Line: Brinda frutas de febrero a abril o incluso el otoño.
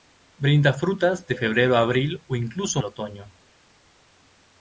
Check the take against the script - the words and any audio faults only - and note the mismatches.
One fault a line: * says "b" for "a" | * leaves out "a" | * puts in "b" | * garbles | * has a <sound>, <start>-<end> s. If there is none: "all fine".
all fine